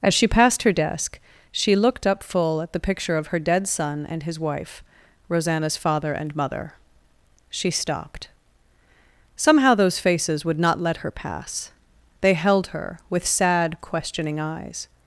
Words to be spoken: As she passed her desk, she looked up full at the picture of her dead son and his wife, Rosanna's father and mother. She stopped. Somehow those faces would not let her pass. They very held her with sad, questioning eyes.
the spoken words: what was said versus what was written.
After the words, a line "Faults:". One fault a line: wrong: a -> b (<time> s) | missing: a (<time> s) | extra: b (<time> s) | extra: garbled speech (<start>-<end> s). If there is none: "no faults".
As she passed her desk, she looked up full at the picture of her dead son and his wife, Rosanna's father and mother. She stopped. Somehow those faces would not let her pass. They held her with sad, questioning eyes.
Faults:
missing: very (12.3 s)